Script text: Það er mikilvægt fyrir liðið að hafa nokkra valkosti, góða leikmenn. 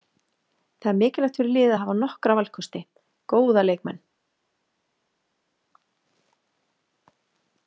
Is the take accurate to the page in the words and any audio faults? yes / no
yes